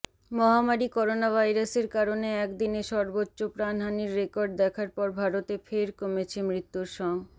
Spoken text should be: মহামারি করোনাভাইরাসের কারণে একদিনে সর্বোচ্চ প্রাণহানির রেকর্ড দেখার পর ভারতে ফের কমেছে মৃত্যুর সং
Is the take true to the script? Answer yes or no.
yes